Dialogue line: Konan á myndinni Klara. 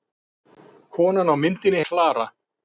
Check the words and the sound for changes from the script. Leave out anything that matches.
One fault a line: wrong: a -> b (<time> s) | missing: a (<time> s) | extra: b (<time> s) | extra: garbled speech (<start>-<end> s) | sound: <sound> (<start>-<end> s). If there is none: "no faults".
no faults